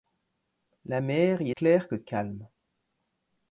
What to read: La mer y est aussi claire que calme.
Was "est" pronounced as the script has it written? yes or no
no